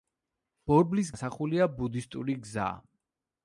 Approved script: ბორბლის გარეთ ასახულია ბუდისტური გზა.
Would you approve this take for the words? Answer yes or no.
no